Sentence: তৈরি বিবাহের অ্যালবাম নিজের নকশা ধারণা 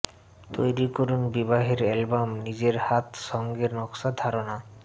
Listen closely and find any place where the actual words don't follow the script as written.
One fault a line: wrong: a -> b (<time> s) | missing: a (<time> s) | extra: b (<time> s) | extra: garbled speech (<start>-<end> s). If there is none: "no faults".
extra: করুন (0.9 s)
extra: হাত সঙ্গে (2.8 s)